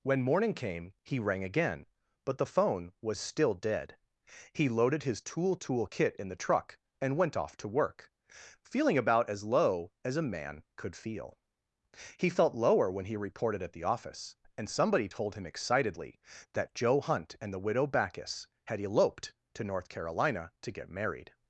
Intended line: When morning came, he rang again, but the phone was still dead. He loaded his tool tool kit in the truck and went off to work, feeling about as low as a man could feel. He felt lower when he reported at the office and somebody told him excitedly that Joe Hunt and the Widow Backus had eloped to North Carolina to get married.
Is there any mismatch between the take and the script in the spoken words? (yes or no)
no